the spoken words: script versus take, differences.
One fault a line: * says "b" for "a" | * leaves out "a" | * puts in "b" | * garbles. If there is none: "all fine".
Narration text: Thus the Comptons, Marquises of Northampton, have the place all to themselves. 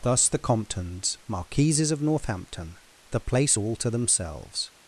* leaves out "have"